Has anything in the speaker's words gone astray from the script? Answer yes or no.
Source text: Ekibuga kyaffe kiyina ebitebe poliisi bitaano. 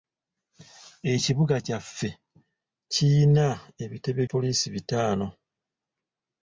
no